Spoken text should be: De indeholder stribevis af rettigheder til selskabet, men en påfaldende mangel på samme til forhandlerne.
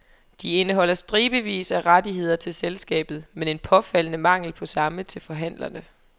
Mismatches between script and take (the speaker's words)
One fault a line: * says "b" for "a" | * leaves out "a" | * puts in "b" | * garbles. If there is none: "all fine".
all fine